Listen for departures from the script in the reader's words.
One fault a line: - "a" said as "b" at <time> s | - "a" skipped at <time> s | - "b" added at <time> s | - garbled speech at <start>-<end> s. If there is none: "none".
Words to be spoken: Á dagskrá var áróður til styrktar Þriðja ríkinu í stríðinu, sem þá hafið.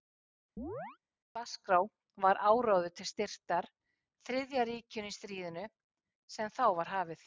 - "var" added at 6.8 s